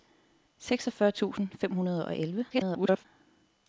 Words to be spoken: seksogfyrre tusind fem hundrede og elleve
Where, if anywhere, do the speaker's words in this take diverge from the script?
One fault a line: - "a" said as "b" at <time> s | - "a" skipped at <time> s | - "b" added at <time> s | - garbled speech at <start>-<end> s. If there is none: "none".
- garbled speech at 2.5-3.1 s